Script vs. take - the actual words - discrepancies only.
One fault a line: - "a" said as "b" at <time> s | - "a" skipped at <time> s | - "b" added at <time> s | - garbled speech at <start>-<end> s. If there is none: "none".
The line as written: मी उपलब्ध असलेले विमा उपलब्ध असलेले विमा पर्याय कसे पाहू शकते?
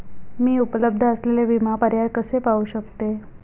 - "उपलब्ध असलेले विमा" skipped at 1.8 s